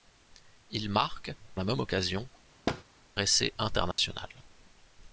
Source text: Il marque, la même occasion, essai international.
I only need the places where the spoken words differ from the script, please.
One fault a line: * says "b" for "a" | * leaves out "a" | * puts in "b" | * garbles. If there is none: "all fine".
all fine